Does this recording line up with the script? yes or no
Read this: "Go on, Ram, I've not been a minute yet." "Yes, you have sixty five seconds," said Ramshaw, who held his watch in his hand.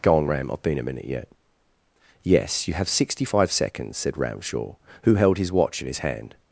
no